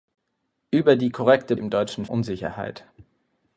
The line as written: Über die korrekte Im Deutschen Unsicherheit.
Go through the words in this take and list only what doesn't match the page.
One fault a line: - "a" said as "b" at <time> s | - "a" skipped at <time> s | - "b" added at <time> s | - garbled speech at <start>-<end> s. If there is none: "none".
none